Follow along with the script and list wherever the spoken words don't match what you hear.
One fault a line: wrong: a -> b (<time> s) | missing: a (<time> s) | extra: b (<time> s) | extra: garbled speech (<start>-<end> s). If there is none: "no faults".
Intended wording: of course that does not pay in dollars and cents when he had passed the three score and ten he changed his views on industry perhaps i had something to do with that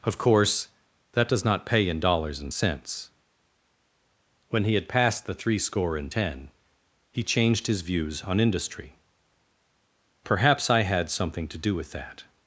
no faults